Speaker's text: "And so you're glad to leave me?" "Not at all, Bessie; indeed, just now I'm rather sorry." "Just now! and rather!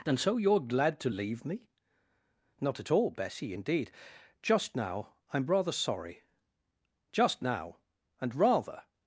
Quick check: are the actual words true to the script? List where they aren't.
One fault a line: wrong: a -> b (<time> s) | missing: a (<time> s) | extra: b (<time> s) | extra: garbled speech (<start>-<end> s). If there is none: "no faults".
no faults